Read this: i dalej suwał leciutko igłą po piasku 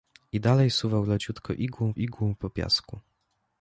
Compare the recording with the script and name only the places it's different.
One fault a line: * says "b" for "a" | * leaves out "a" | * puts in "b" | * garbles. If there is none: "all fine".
* puts in "igłą"